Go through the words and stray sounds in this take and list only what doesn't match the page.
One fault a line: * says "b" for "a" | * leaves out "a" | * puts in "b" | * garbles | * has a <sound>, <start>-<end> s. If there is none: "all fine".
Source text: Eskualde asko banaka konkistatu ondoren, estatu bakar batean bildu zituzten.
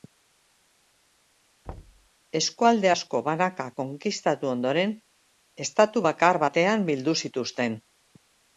* has a thud, 1.6-2.1 s